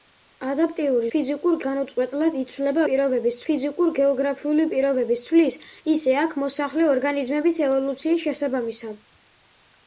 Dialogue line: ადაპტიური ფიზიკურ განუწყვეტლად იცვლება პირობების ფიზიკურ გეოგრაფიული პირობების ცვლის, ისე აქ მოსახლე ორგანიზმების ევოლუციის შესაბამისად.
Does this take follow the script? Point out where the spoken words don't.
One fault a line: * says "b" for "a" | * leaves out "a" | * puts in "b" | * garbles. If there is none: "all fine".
all fine